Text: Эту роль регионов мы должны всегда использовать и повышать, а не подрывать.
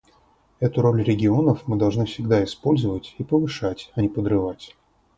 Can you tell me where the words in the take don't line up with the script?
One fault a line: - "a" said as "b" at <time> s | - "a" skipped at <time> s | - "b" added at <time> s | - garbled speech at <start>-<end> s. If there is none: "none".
none